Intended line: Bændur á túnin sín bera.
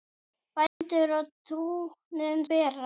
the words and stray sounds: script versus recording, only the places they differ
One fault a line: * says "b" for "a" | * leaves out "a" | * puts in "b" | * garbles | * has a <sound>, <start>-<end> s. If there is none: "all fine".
* has a dropout, 0.7-0.8 s
* leaves out "sín"